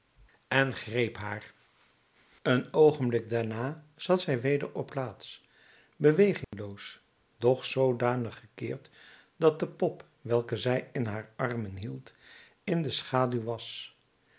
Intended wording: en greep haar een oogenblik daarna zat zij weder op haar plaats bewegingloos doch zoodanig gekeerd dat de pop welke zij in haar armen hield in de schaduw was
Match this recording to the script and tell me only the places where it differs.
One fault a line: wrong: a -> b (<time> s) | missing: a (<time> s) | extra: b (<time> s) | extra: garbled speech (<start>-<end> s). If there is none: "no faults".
missing: haar (4.9 s)